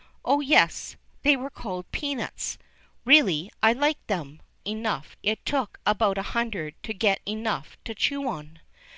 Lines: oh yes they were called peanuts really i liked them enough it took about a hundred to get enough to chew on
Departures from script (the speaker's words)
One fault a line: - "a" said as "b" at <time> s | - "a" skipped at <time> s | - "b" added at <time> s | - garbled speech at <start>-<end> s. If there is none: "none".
none